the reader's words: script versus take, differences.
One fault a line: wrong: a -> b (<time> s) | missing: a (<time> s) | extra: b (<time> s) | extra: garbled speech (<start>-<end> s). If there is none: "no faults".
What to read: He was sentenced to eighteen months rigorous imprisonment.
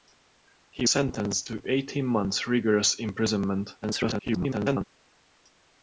missing: was (0.9 s)
extra: garbled speech (3.8-4.8 s)